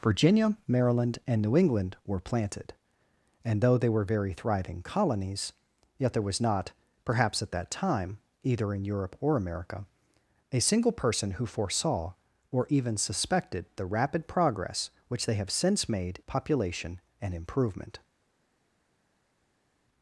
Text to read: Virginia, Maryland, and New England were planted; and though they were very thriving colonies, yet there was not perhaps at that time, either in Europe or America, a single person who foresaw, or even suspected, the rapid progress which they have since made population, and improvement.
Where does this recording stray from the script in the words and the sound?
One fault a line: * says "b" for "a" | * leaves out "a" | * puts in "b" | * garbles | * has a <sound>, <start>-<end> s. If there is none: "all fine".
all fine